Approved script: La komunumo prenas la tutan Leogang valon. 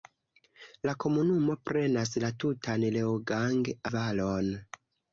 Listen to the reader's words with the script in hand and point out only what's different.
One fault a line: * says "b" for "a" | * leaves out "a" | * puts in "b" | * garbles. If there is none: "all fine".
all fine